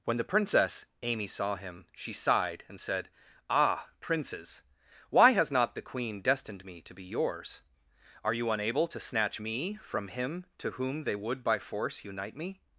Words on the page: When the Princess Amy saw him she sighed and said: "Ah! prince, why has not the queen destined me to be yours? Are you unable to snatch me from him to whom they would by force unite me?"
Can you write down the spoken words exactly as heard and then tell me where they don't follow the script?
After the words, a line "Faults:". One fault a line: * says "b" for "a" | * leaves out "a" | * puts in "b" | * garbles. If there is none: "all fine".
When the Princess Amy saw him she sighed and said: "Ah! princes, why has not the queen destined me to be yours? Are you unable to snatch me from him to whom they would by force unite me?"
Faults:
* says "princes" for "prince"